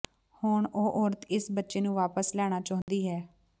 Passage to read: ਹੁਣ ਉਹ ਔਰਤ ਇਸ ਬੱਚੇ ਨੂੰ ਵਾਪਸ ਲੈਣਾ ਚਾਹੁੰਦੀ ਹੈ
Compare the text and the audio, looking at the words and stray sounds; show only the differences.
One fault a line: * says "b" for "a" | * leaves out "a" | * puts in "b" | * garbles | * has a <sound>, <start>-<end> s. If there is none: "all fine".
* has a dropout, 2.8-2.9 s